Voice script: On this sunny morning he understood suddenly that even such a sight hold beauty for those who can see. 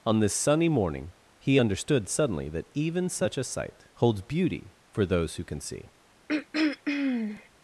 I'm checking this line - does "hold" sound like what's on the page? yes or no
no